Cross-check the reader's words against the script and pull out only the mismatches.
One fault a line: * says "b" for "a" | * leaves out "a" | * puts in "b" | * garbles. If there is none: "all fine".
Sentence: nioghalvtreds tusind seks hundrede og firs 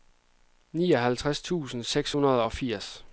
all fine